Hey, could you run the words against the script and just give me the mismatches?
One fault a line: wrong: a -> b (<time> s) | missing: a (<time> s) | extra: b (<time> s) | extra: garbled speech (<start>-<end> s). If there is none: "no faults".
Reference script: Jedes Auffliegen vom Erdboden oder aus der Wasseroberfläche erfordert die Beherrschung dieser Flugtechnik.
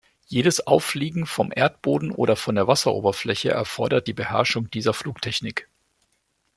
wrong: aus -> von (2.4 s)